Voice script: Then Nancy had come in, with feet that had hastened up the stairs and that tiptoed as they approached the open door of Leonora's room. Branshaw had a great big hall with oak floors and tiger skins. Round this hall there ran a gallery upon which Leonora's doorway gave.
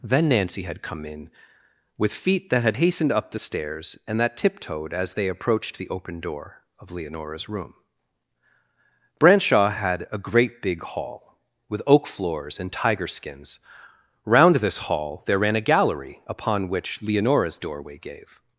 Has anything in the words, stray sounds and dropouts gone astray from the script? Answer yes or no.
no